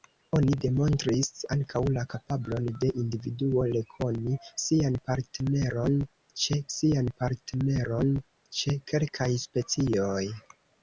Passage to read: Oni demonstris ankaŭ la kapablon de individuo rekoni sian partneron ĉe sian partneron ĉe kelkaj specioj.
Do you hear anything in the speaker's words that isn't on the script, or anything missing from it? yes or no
no